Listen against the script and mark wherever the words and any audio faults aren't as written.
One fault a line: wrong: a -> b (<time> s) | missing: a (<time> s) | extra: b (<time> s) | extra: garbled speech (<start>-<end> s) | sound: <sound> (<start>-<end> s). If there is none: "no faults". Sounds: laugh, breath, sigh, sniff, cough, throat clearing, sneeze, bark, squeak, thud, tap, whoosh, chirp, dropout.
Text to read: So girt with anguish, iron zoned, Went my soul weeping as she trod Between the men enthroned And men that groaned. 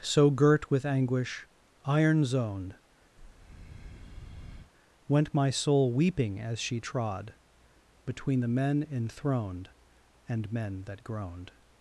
sound: breath (3.2-4.7 s)